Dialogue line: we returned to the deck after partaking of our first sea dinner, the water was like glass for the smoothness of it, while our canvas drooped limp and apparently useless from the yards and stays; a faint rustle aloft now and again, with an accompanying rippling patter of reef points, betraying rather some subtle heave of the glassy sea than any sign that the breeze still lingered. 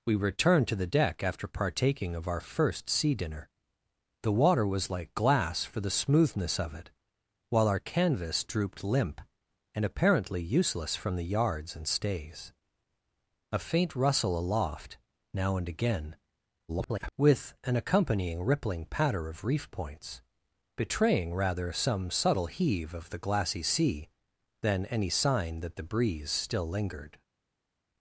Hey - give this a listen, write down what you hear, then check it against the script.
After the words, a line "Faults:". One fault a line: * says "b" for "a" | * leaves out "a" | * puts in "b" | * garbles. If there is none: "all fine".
we returned to the deck after partaking of our first sea dinner, the water was like glass for the smoothness of it, while our canvas drooped limp and apparently useless from the yards and stays; a faint rustle aloft now and again, [garbled] with an accompanying rippling patter of reef points, betraying rather some subtle heave of the glassy sea than any sign that the breeze still lingered.
Faults:
* garbles